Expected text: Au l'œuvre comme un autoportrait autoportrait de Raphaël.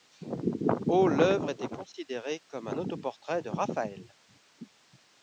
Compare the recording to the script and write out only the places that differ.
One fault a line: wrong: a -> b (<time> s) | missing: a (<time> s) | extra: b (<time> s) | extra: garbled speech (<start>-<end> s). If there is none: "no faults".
extra: était considérée (1.5 s)
missing: autoportrait (3.4 s)